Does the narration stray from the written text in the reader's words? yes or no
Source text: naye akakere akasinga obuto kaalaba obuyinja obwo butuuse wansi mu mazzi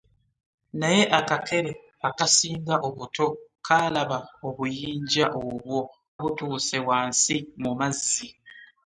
no